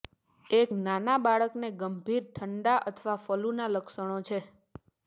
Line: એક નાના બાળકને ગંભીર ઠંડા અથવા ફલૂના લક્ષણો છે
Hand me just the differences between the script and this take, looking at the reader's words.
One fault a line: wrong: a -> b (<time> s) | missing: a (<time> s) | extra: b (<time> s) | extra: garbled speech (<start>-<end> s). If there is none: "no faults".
no faults